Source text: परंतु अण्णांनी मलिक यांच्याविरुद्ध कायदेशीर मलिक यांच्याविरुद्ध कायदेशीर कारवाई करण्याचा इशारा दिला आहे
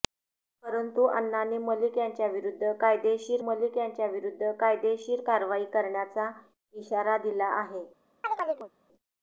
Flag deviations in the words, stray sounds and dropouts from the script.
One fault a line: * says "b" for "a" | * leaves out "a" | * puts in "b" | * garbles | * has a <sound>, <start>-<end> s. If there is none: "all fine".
* has a chirp, 8.2-8.7 s